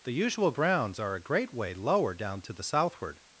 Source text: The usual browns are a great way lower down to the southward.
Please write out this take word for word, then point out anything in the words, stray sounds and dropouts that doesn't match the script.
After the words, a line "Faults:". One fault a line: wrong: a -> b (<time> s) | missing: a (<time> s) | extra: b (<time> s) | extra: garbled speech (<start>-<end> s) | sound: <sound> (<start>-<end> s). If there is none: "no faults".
The usual browns are a great way lower down to the southward.
Faults:
no faults